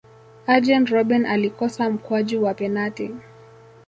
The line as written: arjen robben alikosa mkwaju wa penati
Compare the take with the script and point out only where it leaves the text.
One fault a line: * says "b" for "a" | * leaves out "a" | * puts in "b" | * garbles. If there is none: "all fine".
all fine